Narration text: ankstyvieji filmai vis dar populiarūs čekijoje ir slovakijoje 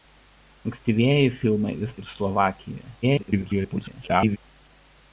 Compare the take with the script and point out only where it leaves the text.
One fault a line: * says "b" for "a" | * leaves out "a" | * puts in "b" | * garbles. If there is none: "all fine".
* leaves out "dar populiarūs čekijoje"
* garbles